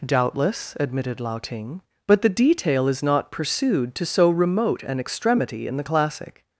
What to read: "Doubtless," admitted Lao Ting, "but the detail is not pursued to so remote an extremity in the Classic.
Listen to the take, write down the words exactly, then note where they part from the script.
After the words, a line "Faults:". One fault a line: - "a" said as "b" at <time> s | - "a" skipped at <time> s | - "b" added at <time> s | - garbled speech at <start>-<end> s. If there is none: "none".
"Doubtless," admitted Lao Ting, "but the detail is not pursued to so remote an extremity in the Classic.
Faults:
none